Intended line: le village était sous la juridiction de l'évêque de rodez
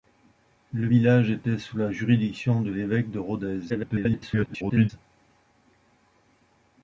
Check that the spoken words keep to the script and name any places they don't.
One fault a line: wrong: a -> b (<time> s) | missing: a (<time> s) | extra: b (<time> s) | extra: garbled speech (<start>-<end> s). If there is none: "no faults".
extra: garbled speech (3.7-4.9 s)